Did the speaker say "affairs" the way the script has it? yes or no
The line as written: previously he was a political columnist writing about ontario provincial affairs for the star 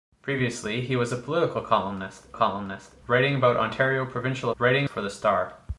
no